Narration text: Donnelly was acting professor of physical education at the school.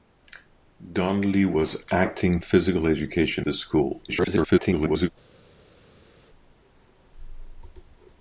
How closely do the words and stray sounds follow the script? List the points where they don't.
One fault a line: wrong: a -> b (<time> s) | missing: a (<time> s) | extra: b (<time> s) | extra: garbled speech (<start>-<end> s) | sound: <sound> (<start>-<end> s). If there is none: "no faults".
missing: professor of (2.4 s)
missing: at (3.5 s)
extra: garbled speech (4.1-5.1 s)